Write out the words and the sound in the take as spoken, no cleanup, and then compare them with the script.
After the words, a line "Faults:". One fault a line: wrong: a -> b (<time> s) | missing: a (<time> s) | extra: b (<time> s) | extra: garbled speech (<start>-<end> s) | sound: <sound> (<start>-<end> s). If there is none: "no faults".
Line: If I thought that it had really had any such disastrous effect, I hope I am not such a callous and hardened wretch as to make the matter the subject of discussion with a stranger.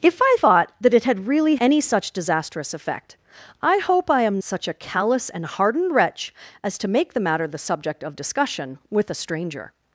If I thought that it had really any such disastrous effect, I hope I am such a callous and hardened wretch as to make the matter the subject of discussion with a stranger.
Faults:
missing: had (1.6 s)
missing: not (4.4 s)